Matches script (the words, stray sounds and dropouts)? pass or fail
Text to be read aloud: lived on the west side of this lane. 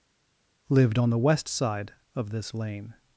pass